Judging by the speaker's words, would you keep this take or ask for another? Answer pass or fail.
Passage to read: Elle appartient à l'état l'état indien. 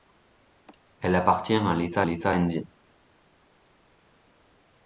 pass